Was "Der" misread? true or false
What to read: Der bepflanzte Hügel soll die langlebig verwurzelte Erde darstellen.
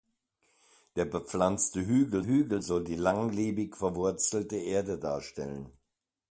false